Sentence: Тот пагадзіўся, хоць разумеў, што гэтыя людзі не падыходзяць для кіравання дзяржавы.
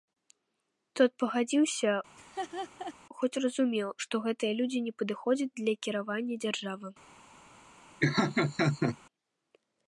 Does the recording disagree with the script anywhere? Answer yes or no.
no